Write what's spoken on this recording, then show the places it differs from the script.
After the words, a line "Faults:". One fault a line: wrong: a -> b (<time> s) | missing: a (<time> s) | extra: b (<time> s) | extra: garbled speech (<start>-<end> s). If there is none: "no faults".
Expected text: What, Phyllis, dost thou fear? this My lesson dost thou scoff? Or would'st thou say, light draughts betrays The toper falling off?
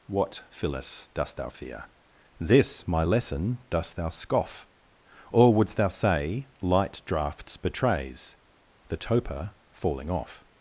What, Phyllis, dost thou fear? this My lesson dost thou scoff? Or would'st thou say, light draughts betrays The toper falling off?
Faults:
no faults